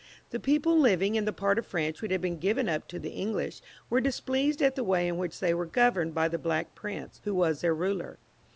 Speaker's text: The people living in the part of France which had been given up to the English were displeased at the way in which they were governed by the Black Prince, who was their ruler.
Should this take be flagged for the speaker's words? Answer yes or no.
no